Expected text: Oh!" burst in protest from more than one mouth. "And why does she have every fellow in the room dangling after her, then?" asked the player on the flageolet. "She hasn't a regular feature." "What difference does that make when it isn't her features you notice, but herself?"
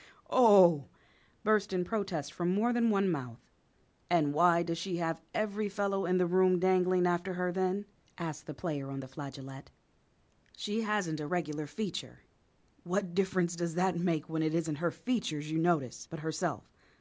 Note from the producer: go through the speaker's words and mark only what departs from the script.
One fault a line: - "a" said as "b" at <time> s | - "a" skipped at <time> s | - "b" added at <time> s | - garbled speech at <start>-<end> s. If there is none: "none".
none